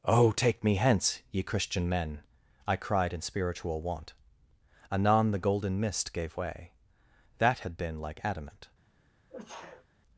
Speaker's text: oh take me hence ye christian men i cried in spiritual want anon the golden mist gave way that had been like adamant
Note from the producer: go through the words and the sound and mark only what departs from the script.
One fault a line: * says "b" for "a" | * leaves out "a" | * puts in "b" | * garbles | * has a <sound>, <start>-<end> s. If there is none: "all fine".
* has a sneeze, 9.3-9.9 s